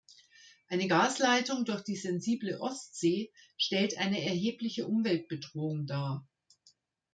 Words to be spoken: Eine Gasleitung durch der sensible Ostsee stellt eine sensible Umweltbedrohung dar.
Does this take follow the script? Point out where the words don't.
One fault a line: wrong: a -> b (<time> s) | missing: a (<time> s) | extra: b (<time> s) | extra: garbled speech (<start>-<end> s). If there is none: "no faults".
wrong: der -> die (1.8 s)
wrong: sensible -> erhebliche (4.2 s)